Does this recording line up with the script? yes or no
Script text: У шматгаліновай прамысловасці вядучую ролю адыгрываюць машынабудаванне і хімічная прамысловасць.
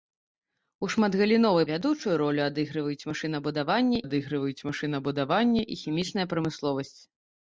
no